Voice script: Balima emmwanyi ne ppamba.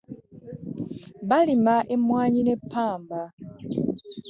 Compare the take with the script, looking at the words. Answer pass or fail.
pass